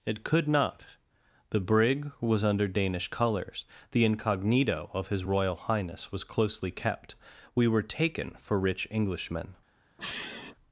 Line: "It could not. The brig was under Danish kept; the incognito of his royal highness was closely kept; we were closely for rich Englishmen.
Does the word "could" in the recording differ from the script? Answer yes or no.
no